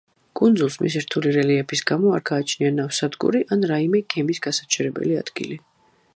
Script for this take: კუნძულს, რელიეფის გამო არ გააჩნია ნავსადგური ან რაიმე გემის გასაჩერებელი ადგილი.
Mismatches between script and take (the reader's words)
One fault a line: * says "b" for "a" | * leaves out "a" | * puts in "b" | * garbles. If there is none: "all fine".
* puts in "მისი რთული"